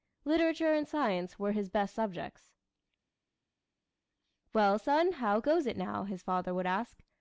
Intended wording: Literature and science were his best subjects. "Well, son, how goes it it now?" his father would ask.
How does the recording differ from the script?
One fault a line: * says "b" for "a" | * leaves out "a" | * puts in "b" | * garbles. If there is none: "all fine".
* leaves out "it"